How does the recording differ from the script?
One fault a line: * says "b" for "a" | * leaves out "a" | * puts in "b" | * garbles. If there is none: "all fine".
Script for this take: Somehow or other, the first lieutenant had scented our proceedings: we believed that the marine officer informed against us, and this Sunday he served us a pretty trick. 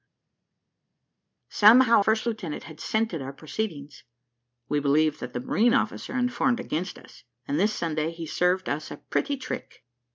* leaves out "or other the"